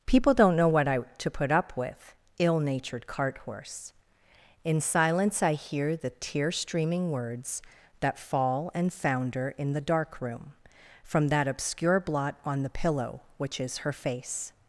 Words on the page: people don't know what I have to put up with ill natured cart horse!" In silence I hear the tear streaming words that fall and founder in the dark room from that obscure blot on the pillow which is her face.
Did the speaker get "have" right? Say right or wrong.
wrong